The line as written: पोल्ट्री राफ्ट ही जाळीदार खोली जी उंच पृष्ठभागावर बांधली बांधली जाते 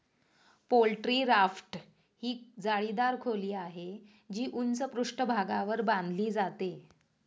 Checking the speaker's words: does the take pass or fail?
fail